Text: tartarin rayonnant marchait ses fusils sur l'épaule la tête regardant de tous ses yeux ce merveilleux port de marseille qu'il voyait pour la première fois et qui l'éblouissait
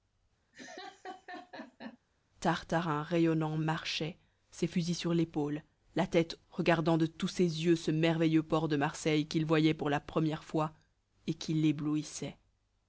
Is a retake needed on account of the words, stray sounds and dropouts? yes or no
yes